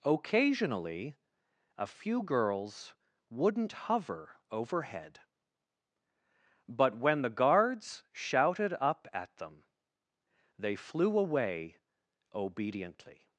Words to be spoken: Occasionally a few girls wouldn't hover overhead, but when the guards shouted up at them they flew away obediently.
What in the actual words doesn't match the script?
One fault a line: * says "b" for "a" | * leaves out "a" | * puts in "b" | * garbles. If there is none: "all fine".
all fine